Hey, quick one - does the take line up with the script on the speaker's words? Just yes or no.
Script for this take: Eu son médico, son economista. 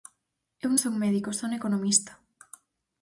yes